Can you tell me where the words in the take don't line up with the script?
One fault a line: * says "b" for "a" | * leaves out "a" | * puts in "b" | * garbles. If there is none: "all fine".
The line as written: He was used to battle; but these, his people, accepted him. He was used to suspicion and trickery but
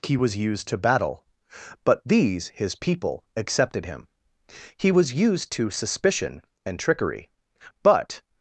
all fine